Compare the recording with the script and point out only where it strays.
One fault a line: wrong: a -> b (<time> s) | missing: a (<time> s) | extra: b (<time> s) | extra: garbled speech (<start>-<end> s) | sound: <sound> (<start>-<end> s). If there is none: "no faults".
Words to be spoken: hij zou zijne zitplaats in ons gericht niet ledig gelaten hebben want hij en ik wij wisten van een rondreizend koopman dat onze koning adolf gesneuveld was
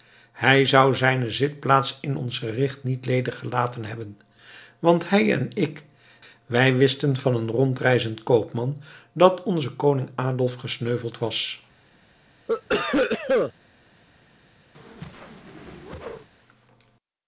sound: cough (12.5-13.5 s)
sound: whoosh (14.7-16.3 s)